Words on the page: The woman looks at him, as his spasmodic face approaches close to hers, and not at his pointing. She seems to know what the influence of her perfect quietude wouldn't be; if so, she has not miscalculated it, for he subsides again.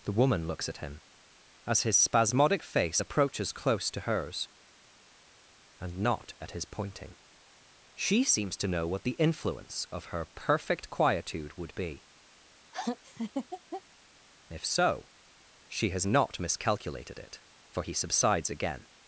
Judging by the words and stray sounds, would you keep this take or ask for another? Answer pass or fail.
fail